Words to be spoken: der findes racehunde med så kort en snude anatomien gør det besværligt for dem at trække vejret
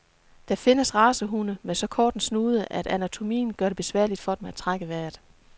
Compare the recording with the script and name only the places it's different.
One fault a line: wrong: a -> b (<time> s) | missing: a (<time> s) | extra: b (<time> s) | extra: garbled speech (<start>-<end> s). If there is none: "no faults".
extra: at (2.7 s)